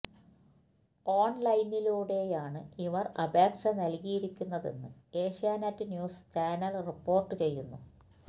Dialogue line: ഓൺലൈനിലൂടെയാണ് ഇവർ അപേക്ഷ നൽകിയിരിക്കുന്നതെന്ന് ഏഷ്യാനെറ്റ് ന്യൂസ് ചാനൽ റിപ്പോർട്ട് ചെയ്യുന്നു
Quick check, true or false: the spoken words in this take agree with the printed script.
true